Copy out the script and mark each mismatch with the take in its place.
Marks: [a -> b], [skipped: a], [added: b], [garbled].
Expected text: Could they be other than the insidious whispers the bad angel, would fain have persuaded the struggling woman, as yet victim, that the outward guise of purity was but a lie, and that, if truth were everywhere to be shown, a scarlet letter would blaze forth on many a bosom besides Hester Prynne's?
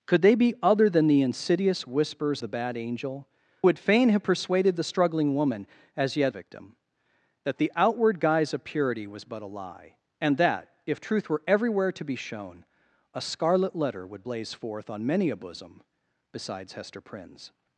Could they be other than the insidious whispers the bad angel, would fain have persuaded the struggling woman, as yet victim, that the outward guise of purity was but a lie, and that, if truth were everywhere to be shown, a scarlet letter would blaze forth on many a bosom besides Hester Prynne's?